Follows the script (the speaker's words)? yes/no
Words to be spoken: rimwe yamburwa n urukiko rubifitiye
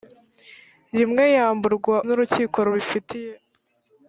yes